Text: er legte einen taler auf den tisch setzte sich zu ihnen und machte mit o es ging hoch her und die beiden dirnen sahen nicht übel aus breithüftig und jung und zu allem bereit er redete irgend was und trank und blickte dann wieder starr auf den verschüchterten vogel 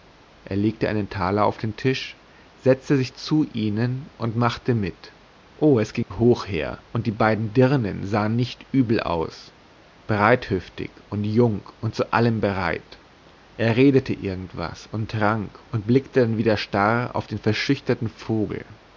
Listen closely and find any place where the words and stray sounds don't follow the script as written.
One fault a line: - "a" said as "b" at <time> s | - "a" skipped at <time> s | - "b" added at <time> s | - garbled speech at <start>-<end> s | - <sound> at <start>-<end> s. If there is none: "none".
- dropout at 6.0-6.1 s